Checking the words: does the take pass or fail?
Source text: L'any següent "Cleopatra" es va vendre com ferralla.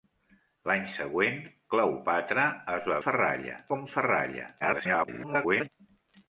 fail